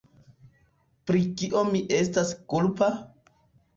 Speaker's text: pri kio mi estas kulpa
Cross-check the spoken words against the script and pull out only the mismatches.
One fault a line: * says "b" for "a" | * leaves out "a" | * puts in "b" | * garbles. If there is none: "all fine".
all fine